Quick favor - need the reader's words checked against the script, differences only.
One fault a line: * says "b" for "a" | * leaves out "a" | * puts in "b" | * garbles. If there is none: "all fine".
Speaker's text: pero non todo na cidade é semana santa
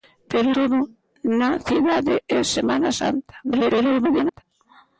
* leaves out "non"
* garbles